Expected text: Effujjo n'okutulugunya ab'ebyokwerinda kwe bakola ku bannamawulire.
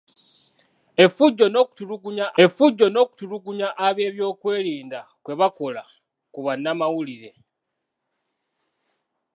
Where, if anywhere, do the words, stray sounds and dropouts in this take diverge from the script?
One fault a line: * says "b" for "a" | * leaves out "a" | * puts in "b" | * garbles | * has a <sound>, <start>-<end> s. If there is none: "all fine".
* puts in "effujjo n'okutulugunya"